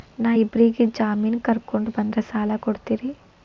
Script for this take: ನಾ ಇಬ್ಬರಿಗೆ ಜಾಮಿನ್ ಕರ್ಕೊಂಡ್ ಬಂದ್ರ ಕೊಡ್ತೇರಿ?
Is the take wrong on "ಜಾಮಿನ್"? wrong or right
right